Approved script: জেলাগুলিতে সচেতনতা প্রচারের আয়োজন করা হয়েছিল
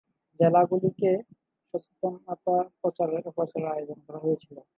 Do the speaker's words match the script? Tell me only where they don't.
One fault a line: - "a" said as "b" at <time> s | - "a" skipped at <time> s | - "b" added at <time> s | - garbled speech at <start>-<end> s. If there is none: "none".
none